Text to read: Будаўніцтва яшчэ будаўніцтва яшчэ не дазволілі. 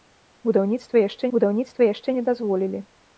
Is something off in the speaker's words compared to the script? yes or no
no